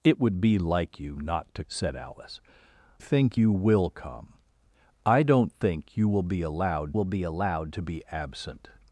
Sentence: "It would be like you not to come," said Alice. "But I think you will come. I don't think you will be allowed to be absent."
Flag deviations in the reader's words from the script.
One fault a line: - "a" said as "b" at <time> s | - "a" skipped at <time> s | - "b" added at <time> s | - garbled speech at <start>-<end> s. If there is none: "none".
- "come" skipped at 1.6 s
- "But I" skipped at 2.4 s
- "will be allowed" added at 6.9 s